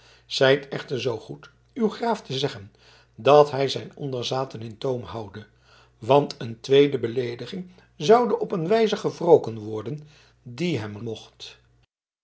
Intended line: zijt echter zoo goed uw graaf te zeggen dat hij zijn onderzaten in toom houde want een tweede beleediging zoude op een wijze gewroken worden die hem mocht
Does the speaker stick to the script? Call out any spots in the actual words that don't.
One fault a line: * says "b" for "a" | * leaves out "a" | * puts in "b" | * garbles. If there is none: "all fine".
all fine